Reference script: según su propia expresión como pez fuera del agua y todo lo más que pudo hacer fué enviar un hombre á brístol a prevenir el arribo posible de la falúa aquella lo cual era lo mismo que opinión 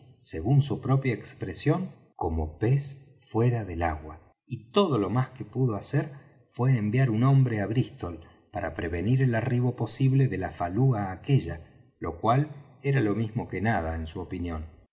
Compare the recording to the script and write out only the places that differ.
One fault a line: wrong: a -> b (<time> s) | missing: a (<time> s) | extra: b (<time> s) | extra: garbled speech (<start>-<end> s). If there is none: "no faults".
wrong: a -> para (8.5 s)
extra: nada en su (13.6 s)